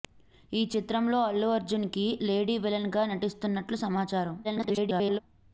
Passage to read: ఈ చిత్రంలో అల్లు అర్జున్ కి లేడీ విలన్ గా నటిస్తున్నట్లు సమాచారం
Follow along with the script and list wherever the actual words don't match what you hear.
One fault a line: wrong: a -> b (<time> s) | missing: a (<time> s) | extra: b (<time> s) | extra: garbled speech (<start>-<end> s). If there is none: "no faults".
extra: garbled speech (4.4-5.2 s)